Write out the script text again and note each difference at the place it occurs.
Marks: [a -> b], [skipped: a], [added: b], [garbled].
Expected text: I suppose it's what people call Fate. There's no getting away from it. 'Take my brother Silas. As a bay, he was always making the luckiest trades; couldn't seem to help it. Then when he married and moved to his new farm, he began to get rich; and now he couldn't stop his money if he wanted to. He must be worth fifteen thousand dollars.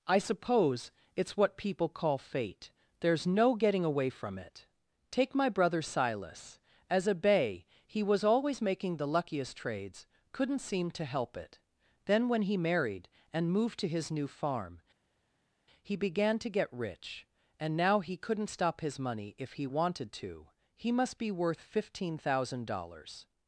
I suppose it's what people call Fate. There's no getting away from it. 'Take my brother Silas. As a bay, he was always making the luckiest trades; couldn't seem to help it. Then when he married and moved to his new farm, he began to get rich; and now he couldn't stop his money if he wanted to. He must be worth fifteen thousand dollars.